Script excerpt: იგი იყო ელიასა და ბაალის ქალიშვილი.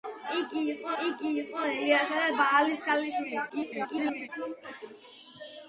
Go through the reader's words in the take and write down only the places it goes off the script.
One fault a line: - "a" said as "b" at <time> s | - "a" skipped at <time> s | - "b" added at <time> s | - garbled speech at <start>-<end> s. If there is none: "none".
- "იგი იყო" added at 1.0 s
- garbled speech at 3.5-4.3 s